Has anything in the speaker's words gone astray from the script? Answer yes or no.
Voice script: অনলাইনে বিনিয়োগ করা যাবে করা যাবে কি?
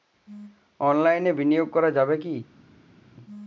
yes